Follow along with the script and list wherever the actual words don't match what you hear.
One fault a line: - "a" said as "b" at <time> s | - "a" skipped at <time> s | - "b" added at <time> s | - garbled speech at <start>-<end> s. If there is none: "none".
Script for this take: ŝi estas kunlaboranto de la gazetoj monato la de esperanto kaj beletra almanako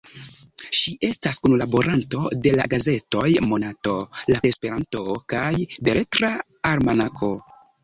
none